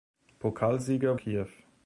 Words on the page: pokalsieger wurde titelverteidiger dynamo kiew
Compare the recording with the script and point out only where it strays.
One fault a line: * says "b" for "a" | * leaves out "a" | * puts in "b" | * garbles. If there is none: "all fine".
* leaves out "wurde titelverteidiger dynamo"